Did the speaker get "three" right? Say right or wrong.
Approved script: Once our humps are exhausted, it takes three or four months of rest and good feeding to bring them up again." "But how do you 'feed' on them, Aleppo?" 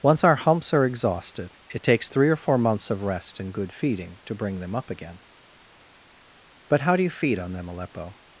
right